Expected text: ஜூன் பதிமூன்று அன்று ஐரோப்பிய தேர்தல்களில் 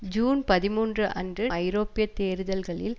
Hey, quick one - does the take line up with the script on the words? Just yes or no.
yes